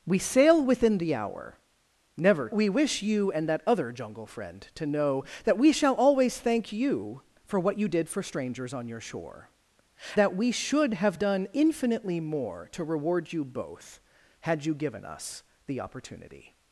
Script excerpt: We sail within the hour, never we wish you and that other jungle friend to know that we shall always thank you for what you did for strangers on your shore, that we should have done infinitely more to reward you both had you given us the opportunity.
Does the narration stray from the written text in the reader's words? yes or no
no